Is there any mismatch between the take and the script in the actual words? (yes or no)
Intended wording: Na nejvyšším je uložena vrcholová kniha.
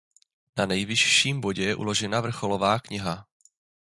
yes